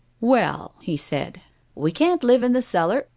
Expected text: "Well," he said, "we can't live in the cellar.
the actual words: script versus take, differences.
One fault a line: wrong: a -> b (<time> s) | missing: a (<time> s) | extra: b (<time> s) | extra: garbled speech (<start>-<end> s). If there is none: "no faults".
no faults